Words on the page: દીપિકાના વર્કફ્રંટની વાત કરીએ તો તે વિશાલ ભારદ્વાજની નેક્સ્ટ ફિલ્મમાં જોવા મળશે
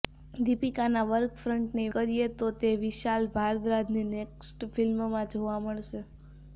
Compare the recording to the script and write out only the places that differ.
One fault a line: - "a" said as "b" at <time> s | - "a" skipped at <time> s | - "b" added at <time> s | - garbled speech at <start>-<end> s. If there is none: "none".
- "વાત" skipped at 1.9 s